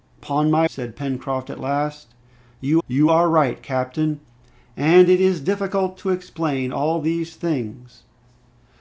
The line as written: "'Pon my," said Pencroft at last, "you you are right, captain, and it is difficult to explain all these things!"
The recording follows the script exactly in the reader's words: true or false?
true